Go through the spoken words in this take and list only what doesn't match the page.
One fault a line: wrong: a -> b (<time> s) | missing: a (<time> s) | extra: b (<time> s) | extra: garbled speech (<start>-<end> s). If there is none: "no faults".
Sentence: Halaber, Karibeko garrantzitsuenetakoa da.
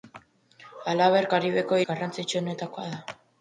no faults